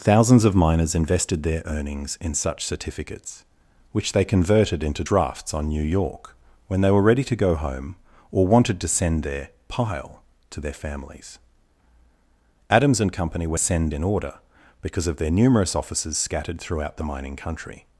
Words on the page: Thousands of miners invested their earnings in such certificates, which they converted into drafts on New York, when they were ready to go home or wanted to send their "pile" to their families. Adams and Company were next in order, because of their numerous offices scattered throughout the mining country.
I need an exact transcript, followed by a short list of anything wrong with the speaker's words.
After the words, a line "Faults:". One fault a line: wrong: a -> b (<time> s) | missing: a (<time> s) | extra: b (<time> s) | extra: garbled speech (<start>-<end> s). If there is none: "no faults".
Thousands of miners invested their earnings in such certificates, which they converted into drafts on New York, when they were ready to go home or wanted to send their "pile" to their families. Adams and Company were send in order, because of their numerous offices scattered throughout the mining country.
Faults:
wrong: next -> send (13.6 s)